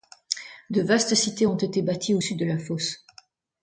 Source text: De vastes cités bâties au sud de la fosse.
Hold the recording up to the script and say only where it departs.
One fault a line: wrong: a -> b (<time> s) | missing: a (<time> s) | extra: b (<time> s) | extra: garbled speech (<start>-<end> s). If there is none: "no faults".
extra: ont été (1.4 s)